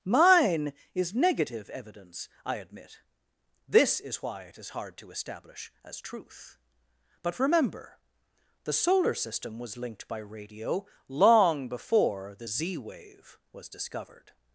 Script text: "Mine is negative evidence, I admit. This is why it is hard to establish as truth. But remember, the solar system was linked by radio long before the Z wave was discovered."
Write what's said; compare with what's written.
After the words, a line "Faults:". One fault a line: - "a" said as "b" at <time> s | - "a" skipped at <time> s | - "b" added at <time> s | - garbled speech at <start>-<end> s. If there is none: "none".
"Mine is negative evidence, I admit. This is why it is hard to establish as truth. But remember, the solar system was linked by radio long before the Z wave was discovered."
Faults:
none